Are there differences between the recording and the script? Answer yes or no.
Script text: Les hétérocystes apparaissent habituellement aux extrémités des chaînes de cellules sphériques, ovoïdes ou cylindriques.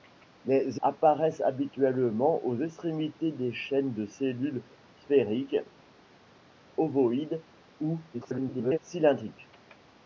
yes